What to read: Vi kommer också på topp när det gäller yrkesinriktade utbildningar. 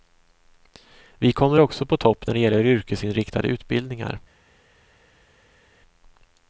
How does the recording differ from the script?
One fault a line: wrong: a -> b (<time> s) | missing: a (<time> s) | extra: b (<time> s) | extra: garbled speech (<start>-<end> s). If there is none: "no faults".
no faults